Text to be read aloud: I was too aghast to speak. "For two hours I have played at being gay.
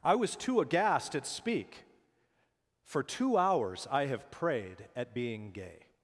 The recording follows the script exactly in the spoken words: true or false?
false